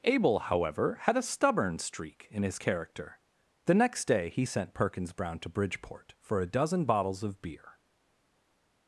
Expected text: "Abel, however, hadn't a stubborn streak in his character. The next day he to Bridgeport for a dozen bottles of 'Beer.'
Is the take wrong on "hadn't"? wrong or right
wrong